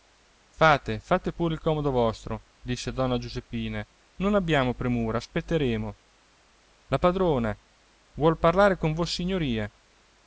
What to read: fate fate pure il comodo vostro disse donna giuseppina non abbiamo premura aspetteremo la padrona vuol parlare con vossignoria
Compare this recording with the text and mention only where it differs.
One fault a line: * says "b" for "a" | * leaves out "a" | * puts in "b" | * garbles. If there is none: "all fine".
all fine